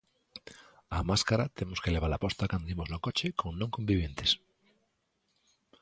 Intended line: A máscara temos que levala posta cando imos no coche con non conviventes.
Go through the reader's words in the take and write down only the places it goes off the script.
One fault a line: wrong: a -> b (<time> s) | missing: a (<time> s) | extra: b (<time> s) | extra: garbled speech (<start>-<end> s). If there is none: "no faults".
no faults